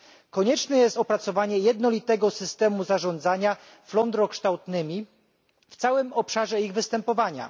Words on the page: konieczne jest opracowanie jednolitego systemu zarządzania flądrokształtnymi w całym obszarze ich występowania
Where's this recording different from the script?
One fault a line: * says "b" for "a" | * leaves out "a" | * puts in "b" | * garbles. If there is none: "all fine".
all fine